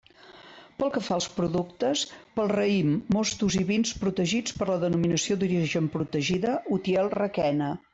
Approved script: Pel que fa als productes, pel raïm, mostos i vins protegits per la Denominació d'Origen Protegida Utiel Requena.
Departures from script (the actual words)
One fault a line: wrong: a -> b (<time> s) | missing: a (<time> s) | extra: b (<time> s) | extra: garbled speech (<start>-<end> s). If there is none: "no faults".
no faults